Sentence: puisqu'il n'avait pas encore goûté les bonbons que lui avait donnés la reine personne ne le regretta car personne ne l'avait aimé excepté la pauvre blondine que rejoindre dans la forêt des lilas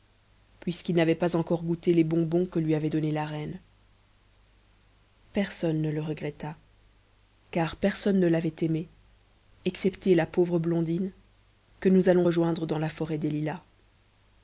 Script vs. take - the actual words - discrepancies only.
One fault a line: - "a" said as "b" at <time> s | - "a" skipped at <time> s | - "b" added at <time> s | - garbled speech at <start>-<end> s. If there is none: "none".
- "nous allons" added at 11.9 s